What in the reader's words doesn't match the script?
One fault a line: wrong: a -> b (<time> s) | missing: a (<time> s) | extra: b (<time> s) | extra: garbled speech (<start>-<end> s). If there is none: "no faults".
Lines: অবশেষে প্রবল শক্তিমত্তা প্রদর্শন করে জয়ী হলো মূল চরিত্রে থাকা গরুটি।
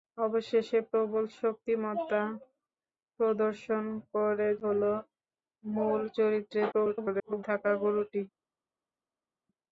missing: জয়ী (4.5 s)
extra: garbled speech (6.7-7.4 s)